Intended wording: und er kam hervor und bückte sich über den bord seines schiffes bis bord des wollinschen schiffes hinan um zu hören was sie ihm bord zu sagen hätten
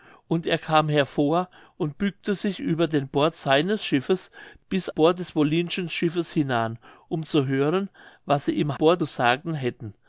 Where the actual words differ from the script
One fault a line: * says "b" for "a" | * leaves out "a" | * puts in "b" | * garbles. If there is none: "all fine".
all fine